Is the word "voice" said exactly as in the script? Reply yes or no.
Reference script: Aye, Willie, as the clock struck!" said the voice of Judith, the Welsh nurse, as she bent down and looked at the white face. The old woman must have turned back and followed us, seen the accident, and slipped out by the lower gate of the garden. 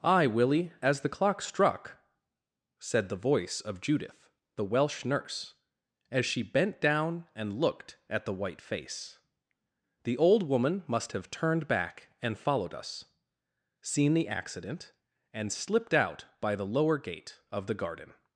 yes